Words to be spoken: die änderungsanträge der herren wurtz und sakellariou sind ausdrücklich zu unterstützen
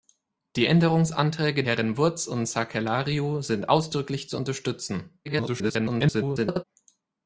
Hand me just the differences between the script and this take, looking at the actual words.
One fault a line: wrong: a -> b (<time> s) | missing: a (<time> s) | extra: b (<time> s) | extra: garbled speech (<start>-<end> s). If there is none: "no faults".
missing: der (1.6 s)
extra: garbled speech (5.3-6.6 s)